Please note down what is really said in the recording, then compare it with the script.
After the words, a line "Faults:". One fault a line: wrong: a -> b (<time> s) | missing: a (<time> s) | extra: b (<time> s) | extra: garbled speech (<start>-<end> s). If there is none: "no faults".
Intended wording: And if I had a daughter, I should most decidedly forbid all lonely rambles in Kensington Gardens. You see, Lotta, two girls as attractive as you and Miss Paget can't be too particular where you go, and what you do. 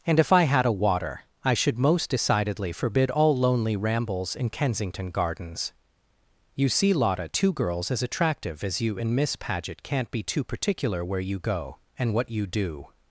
And if I had a water, I should most decidedly forbid all lonely rambles in Kensington Gardens. You see, Lotta, two girls as attractive as you and Miss Paget can't be too particular where you go, and what you do.
Faults:
wrong: daughter -> water (0.7 s)